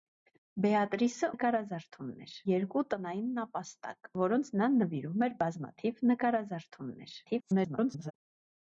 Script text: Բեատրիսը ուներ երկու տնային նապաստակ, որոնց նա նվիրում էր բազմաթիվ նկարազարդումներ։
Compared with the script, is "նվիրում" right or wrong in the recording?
right